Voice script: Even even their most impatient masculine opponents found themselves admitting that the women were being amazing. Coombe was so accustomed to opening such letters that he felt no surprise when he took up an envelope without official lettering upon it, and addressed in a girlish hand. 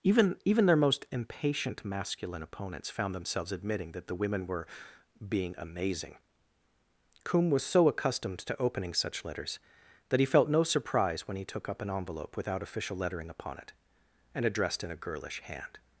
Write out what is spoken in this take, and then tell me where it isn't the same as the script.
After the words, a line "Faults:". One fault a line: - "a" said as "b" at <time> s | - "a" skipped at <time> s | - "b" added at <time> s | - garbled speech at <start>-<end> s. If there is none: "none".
Even even their most impatient masculine opponents found themselves admitting that the women were being amazing. Coombe was so accustomed to opening such letters that he felt no surprise when he took up an envelope without official lettering upon it, and addressed in a girlish hand.
Faults:
none